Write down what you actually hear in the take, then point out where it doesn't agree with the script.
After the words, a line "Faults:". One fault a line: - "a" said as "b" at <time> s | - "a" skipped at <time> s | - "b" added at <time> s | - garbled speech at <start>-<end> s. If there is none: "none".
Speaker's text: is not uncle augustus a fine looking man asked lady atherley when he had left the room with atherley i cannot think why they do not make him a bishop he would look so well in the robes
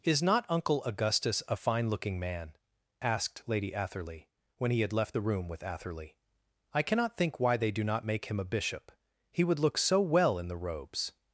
is not uncle augustus a fine looking man asked lady atherley when he had left the room with atherley i cannot think why they do not make him a bishop he would look so well in the robes
Faults:
none